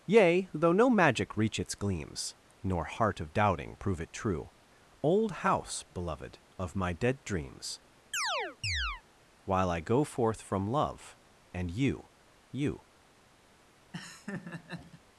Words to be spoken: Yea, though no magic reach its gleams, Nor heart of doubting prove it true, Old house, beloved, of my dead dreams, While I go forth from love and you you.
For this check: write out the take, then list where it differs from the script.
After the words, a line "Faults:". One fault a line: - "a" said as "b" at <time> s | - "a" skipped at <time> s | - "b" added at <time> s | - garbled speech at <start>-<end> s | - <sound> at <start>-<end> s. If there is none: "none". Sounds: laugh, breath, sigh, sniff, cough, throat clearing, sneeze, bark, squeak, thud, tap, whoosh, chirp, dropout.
Yea, though no magic reach its gleams, Nor heart of doubting prove it true, Old house, beloved, of my dead dreams, While I go forth from love and you you.
Faults:
- chirp at 8.1-9.0 s
- laugh at 13.9-15.0 s